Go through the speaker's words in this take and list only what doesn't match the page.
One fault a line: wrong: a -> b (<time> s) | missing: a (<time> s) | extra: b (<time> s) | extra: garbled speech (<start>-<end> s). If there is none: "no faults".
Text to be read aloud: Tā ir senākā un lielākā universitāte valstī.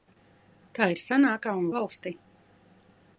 missing: lielākā universitāte (1.7 s)